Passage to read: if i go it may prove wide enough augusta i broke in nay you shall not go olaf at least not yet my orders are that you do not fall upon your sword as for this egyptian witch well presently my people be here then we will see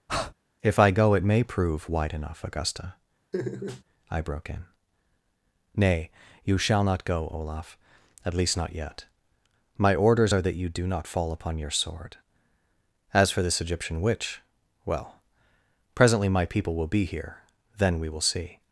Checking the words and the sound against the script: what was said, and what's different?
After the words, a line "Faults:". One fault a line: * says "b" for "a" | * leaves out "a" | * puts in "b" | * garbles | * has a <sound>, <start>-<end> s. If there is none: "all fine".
if i go it may prove wide enough augusta i broke in nay you shall not go olaf at least not yet my orders are that you do not fall upon your sword as for this egyptian witch well presently my people will be here then we will see
Faults:
* has a breath, 0.1-0.3 s
* has a laugh, 3.3-3.8 s
* puts in "will"